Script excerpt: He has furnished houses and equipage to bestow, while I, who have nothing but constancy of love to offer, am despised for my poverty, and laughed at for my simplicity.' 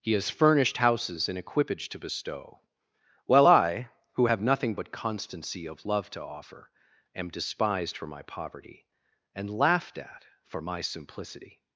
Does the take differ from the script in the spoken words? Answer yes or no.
no